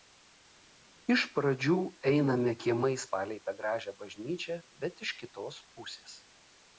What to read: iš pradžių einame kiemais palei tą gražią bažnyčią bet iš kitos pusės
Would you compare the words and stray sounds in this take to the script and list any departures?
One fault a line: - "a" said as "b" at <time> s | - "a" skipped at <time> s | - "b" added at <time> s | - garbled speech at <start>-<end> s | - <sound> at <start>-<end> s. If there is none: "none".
none